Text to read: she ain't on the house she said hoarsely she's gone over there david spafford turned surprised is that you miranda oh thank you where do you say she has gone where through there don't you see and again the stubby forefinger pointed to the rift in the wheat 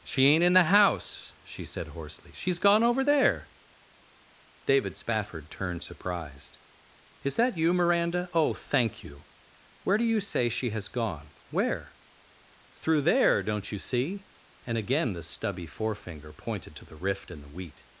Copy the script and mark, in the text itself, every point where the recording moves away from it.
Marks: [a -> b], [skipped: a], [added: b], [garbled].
she ain't [on -> in] the house she said hoarsely she's gone over there david spafford turned surprised is that you miranda oh thank you where do you say she has gone where through there don't you see and again the stubby forefinger pointed to the rift in the wheat